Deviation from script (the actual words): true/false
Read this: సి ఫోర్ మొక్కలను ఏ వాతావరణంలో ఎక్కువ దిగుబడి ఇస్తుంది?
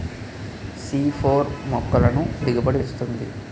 true